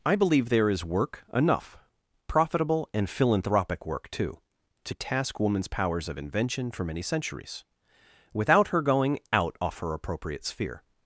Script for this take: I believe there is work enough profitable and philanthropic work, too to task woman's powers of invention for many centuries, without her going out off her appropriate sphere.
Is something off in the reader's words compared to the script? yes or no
no